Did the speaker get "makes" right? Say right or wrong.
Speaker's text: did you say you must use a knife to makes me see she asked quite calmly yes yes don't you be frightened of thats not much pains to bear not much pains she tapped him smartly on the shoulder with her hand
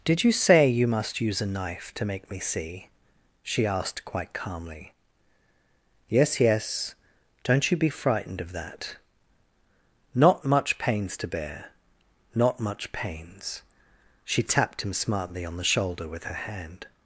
wrong